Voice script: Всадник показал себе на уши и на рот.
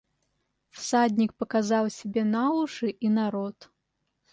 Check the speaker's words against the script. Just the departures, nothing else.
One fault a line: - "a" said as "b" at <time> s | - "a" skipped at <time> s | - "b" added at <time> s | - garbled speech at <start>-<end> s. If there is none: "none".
none